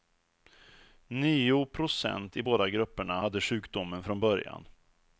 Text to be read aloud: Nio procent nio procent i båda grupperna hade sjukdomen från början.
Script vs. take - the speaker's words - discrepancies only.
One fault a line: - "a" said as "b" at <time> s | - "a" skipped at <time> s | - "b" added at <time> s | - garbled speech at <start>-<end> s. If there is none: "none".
- "nio procent" skipped at 2.4 s